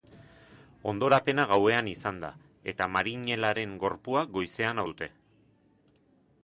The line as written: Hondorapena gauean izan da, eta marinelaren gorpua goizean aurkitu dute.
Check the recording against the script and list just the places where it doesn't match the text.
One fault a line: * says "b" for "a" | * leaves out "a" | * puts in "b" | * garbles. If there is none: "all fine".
* leaves out "aurkitu"